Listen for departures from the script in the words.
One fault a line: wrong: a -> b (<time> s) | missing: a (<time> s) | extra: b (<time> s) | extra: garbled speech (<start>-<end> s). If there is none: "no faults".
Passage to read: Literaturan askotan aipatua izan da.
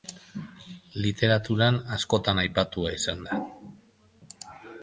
no faults